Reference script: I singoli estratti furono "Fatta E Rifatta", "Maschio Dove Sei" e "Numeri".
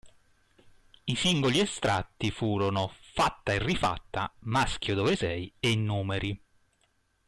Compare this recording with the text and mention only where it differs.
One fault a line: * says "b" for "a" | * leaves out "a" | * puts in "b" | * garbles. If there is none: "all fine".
all fine